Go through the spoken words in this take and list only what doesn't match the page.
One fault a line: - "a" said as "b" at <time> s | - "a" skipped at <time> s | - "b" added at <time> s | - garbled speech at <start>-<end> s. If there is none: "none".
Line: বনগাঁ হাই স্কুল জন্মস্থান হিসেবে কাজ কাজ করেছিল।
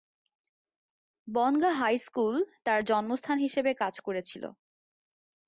- "তার" added at 2.7 s
- "কাজ" skipped at 4.0 s